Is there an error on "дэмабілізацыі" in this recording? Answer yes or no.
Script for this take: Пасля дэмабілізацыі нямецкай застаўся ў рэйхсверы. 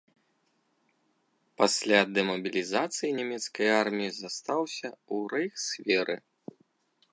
no